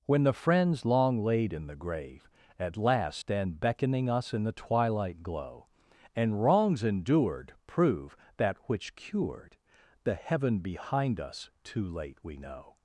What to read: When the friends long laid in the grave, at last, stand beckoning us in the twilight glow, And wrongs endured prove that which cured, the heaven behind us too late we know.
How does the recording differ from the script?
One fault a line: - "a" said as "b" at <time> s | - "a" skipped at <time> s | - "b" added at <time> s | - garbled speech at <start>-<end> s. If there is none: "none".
none